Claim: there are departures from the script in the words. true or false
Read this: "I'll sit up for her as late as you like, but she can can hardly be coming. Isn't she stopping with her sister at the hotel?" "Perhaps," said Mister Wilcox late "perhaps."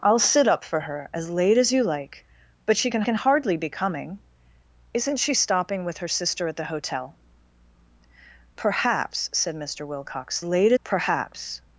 false